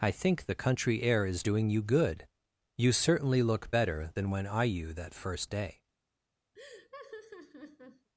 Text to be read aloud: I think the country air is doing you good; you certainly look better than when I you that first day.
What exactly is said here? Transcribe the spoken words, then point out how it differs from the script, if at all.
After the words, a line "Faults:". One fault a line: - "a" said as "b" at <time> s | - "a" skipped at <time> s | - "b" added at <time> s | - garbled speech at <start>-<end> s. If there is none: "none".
I think the country air is doing you good; you certainly look better than when I you that first day.
Faults:
none